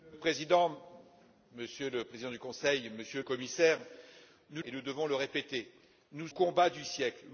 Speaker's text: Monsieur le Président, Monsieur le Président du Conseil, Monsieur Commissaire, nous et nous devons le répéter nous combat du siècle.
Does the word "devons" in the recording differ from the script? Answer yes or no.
no